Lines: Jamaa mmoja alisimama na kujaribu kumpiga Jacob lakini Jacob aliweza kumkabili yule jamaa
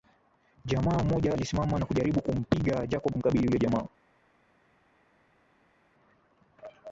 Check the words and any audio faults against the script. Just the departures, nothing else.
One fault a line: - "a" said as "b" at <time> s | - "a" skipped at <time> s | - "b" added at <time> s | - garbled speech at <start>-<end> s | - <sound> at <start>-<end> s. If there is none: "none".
- "lakini Jacob aliweza" skipped at 3.1 s